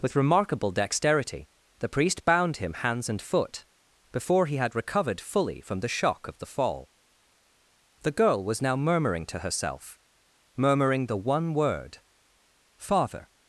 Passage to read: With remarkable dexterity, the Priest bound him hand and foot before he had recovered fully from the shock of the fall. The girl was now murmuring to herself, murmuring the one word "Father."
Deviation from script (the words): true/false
true